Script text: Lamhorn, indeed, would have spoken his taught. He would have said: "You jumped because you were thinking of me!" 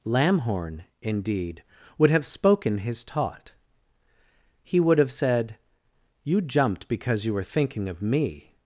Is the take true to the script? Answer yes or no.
yes